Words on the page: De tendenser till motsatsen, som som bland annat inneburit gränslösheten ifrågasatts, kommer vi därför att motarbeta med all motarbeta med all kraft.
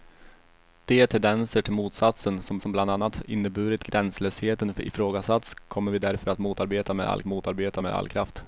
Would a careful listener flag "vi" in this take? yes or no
no